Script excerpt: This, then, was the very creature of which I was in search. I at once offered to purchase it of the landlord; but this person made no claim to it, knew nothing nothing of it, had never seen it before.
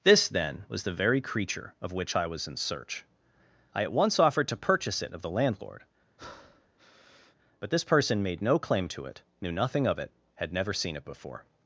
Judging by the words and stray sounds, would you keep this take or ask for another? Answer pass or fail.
fail